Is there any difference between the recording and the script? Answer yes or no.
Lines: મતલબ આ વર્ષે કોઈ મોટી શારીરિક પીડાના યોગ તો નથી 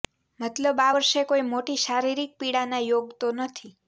no